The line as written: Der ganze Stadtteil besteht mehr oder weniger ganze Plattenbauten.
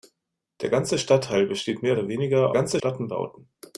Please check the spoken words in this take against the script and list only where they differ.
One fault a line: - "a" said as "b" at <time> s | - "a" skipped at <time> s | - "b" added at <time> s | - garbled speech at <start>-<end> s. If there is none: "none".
none